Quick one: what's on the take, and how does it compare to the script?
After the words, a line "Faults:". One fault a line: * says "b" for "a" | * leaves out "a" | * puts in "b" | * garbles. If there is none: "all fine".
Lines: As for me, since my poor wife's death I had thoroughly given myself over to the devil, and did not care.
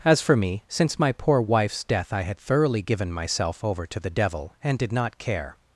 As for me, since my poor wife's death I had thoroughly given myself over to the devil, and did not care.
Faults:
all fine